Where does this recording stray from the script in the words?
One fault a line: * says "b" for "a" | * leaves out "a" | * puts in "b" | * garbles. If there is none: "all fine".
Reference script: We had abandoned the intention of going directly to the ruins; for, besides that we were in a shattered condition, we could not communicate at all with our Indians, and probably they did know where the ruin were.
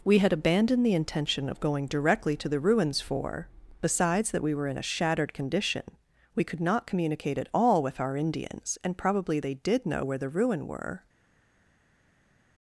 all fine